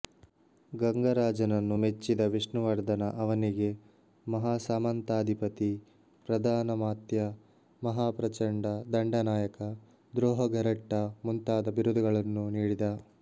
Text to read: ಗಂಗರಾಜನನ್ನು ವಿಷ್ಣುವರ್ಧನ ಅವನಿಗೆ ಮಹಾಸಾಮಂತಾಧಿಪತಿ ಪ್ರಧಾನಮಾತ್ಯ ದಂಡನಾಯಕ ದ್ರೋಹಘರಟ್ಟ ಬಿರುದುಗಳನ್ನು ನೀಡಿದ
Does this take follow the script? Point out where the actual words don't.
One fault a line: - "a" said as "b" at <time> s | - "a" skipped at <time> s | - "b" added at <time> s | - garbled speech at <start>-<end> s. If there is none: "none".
- "ಮೆಚ್ಚಿದ" added at 1.7 s
- "ಮಹಾಪ್ರಚಂಡ" added at 7.8 s
- "ಮುಂತಾದ" added at 11.2 s